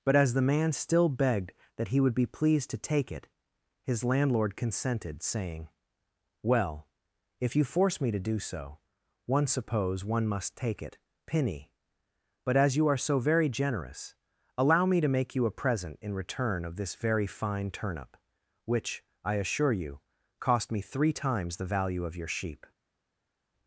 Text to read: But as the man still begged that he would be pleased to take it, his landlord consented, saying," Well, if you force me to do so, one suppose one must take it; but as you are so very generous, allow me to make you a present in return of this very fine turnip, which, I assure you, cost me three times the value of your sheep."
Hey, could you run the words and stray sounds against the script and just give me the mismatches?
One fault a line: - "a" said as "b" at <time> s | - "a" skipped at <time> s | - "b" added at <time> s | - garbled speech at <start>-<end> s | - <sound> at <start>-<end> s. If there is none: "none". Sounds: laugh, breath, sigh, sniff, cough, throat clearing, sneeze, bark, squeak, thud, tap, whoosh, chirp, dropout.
- "penny" added at 11.2 s